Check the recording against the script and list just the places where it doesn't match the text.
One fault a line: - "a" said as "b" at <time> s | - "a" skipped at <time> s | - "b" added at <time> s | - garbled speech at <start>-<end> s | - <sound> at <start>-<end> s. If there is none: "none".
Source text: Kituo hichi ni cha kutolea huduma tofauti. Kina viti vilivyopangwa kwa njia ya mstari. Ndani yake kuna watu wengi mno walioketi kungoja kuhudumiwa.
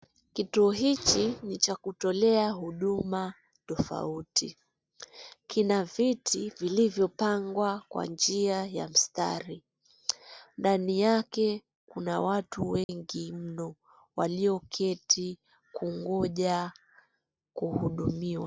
- dropout at 12.8-12.9 s